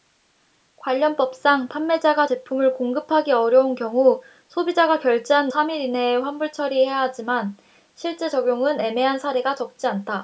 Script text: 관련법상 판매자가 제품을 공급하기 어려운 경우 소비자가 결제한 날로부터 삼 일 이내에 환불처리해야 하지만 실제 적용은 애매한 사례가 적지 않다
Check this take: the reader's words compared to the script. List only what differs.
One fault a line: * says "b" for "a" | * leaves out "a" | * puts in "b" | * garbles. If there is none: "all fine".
* leaves out "날로부터"